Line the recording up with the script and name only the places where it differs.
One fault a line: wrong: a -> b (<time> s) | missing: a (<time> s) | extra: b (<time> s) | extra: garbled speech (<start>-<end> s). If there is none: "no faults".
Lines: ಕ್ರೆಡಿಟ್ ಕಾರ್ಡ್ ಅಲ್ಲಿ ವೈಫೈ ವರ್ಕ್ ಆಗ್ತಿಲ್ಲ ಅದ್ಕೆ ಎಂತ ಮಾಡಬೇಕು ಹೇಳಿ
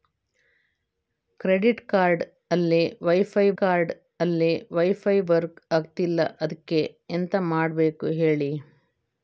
extra: ಕಾರ್ಡ್ ಅಲ್ಲಿ ವೈಫೈ (3.6 s)